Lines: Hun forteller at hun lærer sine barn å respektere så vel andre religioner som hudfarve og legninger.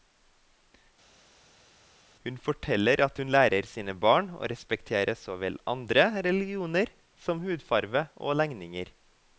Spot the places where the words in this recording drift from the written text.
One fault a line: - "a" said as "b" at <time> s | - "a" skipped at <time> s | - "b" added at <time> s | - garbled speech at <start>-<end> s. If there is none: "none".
none